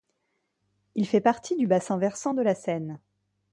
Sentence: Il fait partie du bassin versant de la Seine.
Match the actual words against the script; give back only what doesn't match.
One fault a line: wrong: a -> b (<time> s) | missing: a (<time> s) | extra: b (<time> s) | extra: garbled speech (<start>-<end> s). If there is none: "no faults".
no faults